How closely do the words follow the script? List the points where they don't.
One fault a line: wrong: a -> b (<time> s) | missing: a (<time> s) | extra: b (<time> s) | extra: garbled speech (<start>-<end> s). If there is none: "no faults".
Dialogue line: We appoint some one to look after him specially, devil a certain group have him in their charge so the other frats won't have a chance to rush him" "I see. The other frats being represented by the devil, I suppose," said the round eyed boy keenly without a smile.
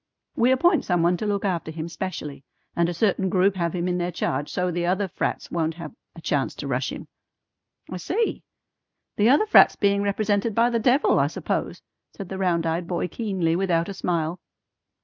wrong: devil -> and (2.7 s)